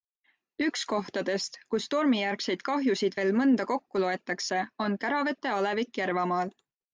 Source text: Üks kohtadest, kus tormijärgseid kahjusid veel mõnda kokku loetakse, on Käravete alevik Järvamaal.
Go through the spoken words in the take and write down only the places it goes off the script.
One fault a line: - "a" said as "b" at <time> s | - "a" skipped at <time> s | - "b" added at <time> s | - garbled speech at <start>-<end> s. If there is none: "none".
none